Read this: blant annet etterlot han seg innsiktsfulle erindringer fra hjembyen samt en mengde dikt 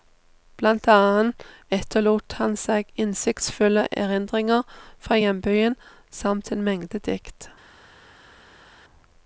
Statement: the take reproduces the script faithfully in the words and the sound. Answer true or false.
true